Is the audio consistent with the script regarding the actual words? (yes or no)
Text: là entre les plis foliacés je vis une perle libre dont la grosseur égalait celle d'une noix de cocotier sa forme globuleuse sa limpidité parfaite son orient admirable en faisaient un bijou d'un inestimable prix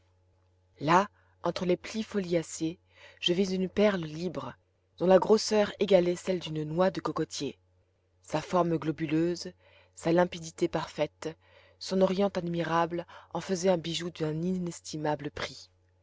yes